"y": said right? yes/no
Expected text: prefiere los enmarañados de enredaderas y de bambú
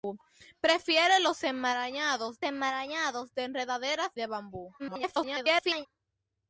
no